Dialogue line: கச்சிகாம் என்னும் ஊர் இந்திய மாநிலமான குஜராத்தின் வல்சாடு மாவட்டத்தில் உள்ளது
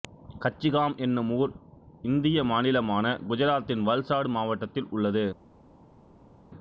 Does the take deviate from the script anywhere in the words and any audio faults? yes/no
no